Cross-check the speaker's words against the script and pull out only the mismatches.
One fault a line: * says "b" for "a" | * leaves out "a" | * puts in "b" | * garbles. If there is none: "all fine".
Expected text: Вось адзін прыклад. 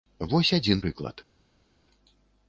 all fine